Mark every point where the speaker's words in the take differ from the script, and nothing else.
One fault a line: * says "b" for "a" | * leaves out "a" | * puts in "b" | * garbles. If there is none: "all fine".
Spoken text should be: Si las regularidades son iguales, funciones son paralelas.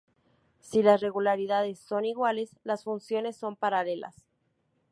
* puts in "las"